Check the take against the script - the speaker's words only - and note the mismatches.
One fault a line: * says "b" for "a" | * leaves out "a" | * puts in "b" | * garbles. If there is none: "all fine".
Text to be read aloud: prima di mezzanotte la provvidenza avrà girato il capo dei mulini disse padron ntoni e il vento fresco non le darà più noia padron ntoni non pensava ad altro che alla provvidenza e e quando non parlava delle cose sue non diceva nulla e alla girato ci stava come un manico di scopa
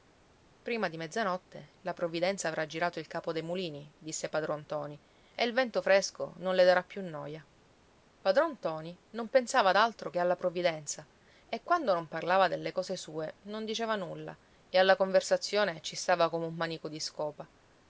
* leaves out "e"
* says "conversazione" for "girato"